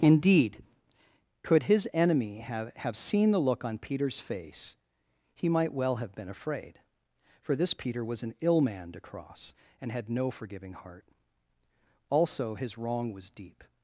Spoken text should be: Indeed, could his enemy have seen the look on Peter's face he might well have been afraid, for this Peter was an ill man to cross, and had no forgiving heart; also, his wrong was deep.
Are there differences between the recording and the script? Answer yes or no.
yes